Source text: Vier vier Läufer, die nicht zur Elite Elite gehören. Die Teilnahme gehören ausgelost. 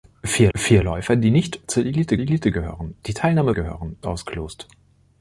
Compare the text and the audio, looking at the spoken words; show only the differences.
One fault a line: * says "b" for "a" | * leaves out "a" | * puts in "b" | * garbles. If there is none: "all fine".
all fine